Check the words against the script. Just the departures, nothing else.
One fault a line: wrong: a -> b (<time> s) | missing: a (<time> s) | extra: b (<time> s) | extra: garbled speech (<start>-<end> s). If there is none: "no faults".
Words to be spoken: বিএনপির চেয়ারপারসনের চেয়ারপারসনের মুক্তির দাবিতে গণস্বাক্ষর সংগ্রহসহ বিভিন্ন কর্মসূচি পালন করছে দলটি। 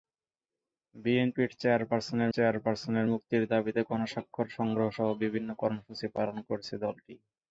no faults